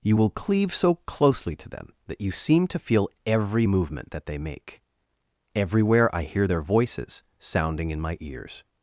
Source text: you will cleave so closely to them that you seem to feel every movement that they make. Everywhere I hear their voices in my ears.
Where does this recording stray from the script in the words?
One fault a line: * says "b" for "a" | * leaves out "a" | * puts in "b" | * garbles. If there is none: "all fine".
* puts in "sounding"